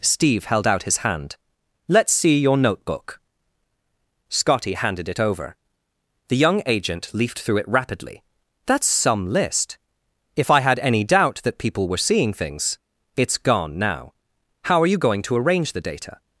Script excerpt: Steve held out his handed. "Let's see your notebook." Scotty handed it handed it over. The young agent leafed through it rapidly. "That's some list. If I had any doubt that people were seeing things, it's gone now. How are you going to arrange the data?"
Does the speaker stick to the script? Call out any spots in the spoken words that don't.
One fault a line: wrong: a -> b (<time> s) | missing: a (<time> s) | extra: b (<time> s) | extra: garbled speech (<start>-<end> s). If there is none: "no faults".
wrong: handed -> hand (1.0 s)
missing: handed it (5.2 s)